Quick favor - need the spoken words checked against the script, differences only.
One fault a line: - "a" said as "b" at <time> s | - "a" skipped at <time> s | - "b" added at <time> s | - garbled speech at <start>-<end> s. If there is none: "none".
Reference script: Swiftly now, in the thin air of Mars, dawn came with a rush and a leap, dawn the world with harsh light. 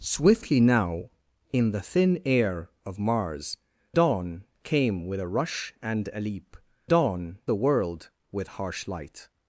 none